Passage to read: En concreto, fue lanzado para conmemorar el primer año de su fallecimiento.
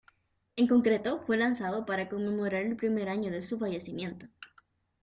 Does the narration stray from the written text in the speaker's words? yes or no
no